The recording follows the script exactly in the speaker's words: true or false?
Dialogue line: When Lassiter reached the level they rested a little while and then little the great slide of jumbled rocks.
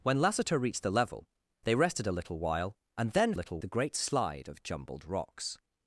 true